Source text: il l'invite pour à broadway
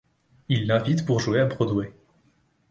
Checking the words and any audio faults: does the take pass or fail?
fail